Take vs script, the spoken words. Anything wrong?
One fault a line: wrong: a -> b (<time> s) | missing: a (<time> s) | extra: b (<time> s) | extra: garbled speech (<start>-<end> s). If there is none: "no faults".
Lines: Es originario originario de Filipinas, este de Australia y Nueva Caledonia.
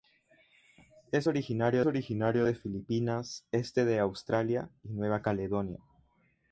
no faults